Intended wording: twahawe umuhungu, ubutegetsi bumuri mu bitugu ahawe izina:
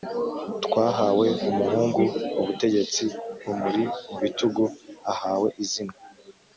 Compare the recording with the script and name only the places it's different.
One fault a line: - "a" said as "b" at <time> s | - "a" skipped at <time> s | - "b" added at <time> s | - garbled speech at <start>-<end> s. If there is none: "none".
none